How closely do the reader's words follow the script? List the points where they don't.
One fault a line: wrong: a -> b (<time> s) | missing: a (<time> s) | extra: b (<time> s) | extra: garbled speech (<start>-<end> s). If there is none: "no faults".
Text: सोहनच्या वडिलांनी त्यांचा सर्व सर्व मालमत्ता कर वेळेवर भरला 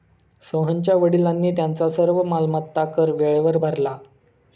missing: सर्व (2.2 s)